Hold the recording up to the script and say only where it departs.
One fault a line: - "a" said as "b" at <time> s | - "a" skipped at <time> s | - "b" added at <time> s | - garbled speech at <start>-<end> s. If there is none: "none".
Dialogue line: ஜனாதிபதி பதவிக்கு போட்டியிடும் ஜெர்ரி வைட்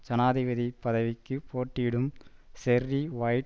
none